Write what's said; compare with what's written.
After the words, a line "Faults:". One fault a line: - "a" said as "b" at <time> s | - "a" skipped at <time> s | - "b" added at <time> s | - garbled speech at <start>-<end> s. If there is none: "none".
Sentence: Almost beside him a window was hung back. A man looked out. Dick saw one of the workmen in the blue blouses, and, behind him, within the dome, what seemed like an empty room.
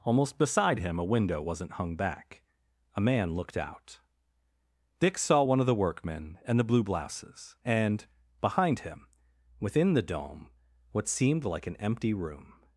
Almost beside him a window wasn't hung back. A man looked out. Dick saw one of the workmen and the blue blouses, and, behind him, within the dome, what seemed like an empty room.
Faults:
- "was" said as "wasn't" at 1.4 s
- "in" said as "and" at 6.5 s